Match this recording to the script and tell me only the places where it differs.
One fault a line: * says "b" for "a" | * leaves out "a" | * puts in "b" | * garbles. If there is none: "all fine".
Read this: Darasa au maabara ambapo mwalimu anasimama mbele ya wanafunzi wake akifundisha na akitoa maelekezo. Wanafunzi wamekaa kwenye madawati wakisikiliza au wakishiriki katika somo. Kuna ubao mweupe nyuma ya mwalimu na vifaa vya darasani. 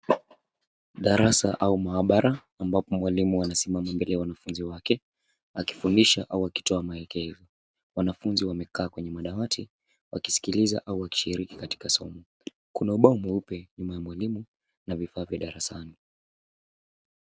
* says "au" for "na"